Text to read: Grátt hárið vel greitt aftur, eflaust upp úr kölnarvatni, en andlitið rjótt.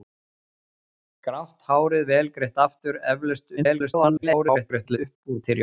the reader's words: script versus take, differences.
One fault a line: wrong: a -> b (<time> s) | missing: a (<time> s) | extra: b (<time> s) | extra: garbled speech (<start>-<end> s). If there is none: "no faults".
extra: garbled speech (3.6-5.0 s)
missing: kölnarvatni en andlitið (5.4 s)